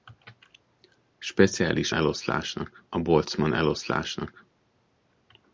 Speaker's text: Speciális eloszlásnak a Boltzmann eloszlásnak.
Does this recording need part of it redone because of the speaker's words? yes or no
no